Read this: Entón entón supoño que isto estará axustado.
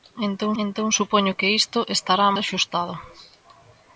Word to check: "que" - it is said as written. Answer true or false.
true